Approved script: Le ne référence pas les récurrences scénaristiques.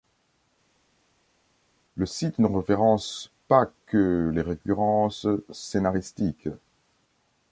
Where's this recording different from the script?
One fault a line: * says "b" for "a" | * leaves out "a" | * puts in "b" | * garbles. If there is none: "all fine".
* puts in "site"
* puts in "que"